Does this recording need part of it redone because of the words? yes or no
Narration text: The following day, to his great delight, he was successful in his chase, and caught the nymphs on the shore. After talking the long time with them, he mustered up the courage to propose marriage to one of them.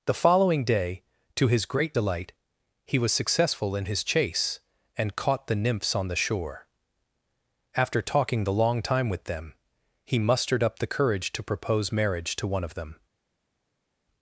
no